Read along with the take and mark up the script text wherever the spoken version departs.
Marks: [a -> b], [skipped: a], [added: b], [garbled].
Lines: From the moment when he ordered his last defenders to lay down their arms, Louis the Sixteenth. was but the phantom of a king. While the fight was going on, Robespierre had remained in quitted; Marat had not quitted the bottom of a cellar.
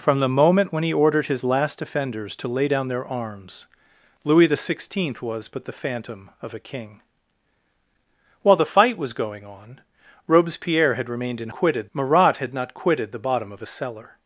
From the moment when he ordered his last defenders to lay down their arms, Louis the Sixteenth. was but the phantom of a king. While the fight was going on, Robespierre had remained in quitted; Marat had not quitted the bottom of a cellar.